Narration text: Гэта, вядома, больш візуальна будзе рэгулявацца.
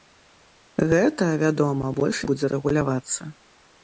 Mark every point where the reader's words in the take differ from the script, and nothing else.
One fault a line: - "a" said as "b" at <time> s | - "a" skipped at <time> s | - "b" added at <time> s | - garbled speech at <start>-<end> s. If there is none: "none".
- "візуальна" skipped at 2.2 s